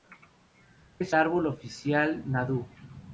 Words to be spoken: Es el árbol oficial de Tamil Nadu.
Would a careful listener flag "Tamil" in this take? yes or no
yes